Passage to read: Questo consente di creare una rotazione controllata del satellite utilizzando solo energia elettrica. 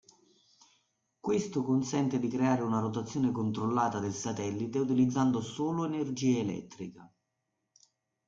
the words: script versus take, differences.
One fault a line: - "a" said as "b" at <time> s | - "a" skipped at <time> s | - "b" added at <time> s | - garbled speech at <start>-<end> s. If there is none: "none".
none